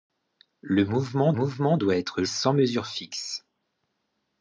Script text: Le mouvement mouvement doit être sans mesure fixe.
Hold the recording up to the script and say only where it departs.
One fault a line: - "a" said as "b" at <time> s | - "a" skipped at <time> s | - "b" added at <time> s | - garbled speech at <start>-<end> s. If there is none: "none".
none